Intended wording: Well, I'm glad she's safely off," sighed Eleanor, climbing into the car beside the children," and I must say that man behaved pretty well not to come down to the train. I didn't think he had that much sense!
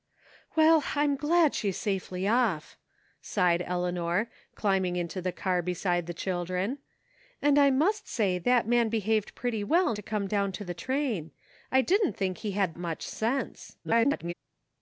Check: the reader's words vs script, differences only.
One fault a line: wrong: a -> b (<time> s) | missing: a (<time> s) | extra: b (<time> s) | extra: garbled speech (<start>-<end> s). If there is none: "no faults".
missing: not (9.9 s)
missing: that (12.8 s)
extra: garbled speech (13.8-14.3 s)